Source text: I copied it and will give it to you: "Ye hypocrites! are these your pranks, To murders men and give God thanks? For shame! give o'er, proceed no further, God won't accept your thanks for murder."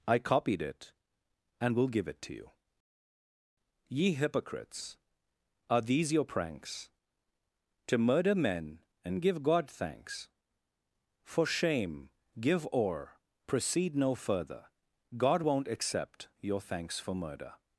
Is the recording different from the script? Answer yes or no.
yes